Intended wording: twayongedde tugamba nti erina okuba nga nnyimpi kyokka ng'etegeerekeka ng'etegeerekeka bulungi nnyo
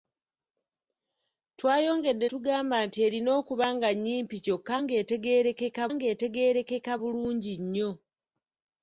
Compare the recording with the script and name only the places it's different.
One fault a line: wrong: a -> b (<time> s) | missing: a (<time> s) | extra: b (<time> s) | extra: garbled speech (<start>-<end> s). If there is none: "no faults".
no faults